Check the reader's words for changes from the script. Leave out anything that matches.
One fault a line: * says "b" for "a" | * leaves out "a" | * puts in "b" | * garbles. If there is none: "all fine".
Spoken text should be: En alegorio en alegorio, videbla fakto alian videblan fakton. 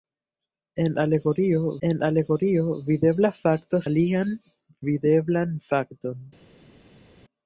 all fine